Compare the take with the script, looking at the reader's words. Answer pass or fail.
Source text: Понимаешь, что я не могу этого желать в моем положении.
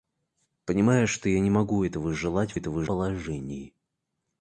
fail